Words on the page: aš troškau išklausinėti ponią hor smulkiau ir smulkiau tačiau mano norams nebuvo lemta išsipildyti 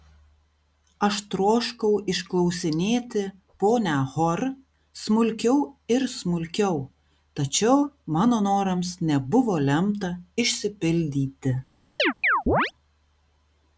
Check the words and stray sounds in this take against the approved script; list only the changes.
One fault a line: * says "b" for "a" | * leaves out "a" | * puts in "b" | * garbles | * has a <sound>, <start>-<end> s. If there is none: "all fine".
* has a chirp, 12.0-12.7 s